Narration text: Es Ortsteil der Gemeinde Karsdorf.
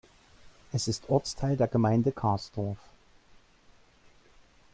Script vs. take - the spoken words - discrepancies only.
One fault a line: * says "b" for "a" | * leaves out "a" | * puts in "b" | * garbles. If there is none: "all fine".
* puts in "ist"